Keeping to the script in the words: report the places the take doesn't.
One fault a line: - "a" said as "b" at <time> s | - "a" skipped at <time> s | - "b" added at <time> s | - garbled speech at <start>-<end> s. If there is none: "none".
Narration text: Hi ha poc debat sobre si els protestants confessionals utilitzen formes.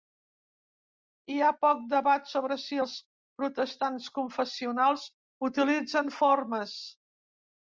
none